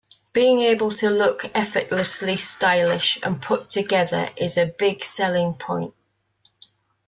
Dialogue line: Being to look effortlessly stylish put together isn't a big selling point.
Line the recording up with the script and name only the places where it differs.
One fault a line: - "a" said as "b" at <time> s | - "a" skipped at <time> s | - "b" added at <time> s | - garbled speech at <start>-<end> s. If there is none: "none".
- "able" added at 0.6 s
- "and" added at 3.2 s
- "isn't" said as "is" at 4.4 s